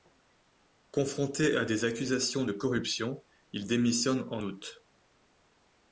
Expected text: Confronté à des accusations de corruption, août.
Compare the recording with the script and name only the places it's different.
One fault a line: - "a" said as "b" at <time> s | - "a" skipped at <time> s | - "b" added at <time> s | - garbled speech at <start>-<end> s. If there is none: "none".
- "il démissionne en" added at 3.5 s